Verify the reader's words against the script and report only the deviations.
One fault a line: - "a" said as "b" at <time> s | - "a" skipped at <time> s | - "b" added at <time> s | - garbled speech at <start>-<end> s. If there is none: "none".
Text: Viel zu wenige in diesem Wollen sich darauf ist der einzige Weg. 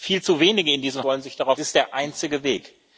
none